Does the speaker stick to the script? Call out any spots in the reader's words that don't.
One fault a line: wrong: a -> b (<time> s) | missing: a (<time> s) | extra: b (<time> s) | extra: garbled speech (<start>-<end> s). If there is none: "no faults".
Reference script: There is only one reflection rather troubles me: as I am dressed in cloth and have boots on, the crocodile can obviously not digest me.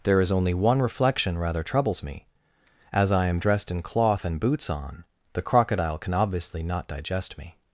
missing: have (4.4 s)